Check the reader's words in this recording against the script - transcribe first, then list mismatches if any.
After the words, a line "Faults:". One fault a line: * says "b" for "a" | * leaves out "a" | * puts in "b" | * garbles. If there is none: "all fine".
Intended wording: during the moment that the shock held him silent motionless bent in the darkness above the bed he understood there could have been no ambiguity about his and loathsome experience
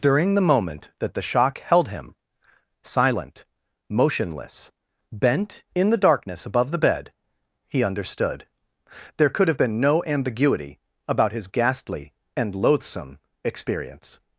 during the moment that the shock held him silent motionless bent in the darkness above the bed he understood there could have been no ambiguity about his ghastly and loathsome experience
Faults:
* puts in "ghastly"